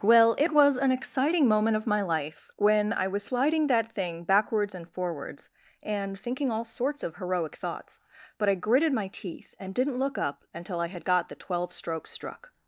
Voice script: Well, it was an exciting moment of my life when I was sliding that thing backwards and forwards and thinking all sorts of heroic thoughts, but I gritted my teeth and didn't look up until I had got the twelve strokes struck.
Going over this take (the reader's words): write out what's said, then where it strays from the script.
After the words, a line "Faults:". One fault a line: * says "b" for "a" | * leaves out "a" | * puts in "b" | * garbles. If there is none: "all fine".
Well, it was an exciting moment of my life when I was sliding that thing backwards and forwards and thinking all sorts of heroic thoughts, but I gritted my teeth and didn't look up until I had got the twelve strokes struck.
Faults:
all fine